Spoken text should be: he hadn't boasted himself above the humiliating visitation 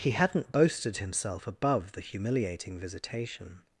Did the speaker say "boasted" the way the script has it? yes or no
yes